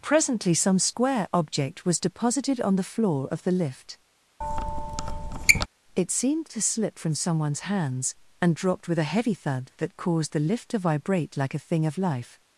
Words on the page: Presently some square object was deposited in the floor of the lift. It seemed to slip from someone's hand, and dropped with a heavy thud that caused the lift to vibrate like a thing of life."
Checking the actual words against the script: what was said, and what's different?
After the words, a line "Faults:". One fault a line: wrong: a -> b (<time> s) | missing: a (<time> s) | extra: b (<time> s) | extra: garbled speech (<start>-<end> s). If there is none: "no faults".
Presently some square object was deposited on the floor of the lift. It seemed to slip from someone's hands, and dropped with a heavy thud that caused the lift to vibrate like a thing of life."
Faults:
wrong: in -> on (2.6 s)
wrong: hand -> hands (7.6 s)